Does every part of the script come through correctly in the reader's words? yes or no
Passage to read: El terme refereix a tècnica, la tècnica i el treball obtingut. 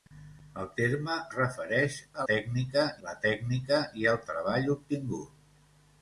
yes